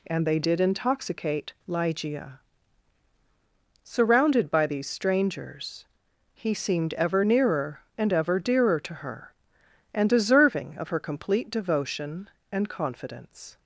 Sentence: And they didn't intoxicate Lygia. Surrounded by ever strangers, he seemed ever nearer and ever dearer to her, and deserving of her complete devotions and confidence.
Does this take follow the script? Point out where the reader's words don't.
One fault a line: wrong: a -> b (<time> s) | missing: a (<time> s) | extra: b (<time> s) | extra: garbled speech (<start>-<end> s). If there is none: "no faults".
wrong: didn't -> did (0.4 s)
wrong: ever -> these (4.7 s)
wrong: devotions -> devotion (11.5 s)